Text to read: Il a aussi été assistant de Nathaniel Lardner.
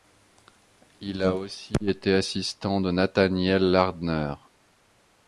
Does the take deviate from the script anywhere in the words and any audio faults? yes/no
no